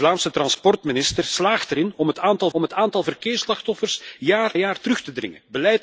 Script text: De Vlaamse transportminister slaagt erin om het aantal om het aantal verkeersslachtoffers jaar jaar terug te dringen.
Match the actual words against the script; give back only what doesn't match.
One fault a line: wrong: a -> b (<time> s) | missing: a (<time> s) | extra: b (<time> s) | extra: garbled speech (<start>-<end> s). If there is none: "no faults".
no faults